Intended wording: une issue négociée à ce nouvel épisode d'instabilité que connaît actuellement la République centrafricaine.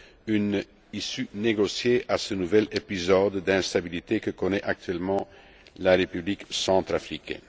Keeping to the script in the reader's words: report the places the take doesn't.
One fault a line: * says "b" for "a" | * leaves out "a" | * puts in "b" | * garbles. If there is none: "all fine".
all fine